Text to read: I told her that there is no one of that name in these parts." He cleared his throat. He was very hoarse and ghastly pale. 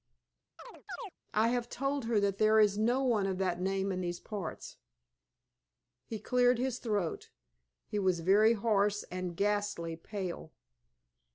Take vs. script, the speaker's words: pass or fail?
fail